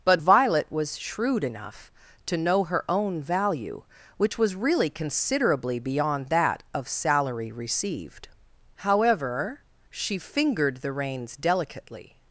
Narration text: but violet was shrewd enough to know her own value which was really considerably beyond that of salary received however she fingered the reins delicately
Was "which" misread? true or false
false